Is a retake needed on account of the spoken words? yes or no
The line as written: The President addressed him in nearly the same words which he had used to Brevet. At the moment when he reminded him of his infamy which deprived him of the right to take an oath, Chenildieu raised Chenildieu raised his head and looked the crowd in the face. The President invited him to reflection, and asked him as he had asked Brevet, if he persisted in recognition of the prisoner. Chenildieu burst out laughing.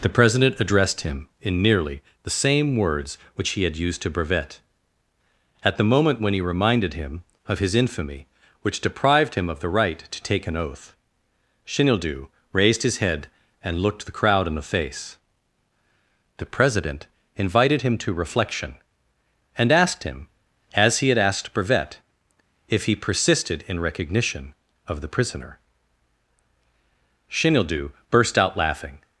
yes